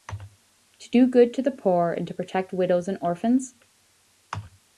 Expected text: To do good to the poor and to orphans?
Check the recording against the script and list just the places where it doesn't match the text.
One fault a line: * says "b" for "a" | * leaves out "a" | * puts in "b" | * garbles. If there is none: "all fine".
* puts in "protect widows and"